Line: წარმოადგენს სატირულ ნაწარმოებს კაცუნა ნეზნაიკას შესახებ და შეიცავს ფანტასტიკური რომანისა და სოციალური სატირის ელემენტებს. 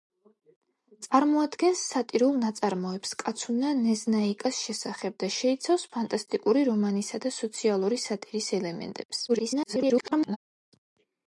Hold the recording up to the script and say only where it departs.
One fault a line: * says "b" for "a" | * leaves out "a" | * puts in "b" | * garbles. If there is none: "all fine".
* garbles